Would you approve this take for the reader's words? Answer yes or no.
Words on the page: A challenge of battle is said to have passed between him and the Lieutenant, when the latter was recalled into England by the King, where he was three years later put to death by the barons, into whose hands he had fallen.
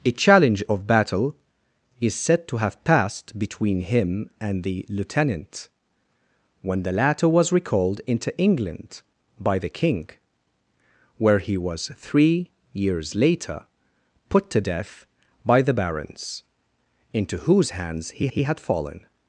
no